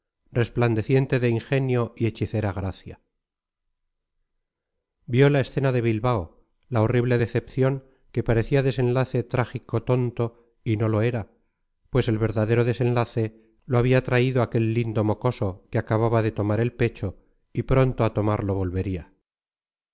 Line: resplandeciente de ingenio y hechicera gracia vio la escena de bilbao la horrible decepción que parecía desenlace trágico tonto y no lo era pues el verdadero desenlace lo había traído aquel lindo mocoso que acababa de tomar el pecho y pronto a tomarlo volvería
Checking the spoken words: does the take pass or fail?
pass